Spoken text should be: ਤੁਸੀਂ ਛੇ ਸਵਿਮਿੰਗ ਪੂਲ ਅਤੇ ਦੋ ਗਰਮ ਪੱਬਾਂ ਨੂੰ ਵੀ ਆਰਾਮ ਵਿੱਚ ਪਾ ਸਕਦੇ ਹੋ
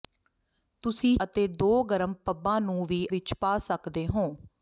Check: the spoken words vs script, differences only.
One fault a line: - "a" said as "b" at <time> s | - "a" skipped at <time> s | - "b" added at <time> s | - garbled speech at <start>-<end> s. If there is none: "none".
- "ਛੇ ਸਵਿਮਿੰਗ ਪੂਲ" skipped at 1.1 s
- "ਆਰਾਮ" skipped at 3.1 s